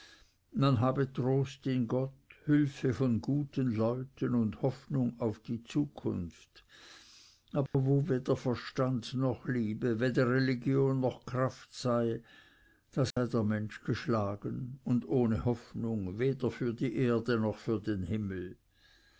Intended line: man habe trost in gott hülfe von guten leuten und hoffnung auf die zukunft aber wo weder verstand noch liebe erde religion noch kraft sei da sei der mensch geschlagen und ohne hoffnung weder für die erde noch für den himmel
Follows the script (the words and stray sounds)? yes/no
no